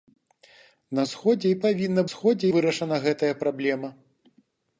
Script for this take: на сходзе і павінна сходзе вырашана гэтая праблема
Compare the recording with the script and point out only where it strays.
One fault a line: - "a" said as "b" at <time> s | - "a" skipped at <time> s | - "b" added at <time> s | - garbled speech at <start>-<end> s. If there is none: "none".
none